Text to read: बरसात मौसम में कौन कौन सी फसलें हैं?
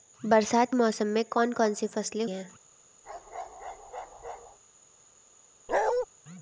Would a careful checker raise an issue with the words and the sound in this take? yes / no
yes